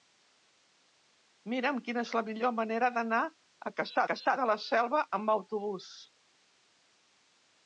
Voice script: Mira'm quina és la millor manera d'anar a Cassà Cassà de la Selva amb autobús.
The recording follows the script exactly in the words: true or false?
true